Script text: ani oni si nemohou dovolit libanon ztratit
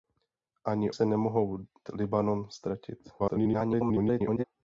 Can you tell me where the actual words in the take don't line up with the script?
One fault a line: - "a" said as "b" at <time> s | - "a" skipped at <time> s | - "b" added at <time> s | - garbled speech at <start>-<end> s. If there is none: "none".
- "oni" skipped at 0.9 s
- "dovolit" skipped at 1.7 s
- garbled speech at 3.2-4.4 s